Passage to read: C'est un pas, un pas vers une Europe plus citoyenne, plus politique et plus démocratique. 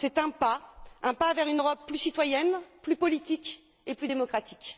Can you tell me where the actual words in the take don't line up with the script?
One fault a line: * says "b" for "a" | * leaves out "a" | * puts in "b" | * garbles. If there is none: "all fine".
all fine